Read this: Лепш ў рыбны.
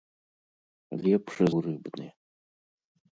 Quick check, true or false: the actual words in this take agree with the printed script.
true